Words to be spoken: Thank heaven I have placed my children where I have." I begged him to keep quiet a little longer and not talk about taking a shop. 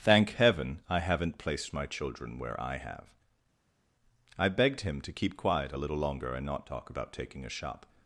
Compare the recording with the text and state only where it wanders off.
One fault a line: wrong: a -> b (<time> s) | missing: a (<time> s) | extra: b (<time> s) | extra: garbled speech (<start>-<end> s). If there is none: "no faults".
wrong: have -> haven't (1.0 s)